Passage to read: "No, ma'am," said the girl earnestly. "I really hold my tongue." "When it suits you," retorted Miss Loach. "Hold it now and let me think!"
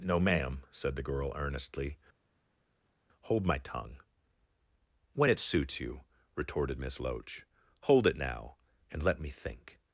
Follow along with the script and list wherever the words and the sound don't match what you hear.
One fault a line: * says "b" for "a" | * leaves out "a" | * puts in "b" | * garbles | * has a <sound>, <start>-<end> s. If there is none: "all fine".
* leaves out "I really"